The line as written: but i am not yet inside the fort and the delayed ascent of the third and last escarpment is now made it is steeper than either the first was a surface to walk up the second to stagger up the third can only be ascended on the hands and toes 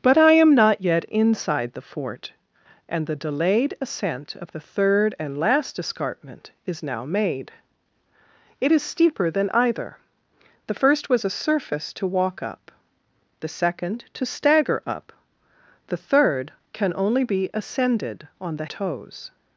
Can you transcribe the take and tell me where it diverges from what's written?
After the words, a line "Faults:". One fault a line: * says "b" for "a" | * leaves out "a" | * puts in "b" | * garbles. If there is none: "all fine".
but i am not yet inside the fort and the delayed ascent of the third and last escarpment is now made it is steeper than either the first was a surface to walk up the second to stagger up the third can only be ascended on the toes
Faults:
* leaves out "hands and"